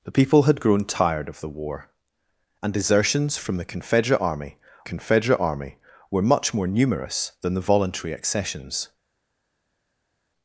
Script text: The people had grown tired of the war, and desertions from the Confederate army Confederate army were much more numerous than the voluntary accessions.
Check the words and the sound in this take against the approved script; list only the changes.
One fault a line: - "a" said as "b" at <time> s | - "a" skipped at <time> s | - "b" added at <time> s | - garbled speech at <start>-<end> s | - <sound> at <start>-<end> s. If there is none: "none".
none